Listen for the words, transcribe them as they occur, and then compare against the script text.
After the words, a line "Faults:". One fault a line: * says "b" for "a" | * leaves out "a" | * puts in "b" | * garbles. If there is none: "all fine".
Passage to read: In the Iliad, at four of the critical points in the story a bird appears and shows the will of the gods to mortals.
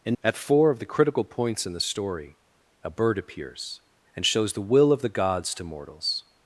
In at four of the critical points in the story a bird appears and shows the will of the gods to mortals.
Faults:
* leaves out "the Iliad"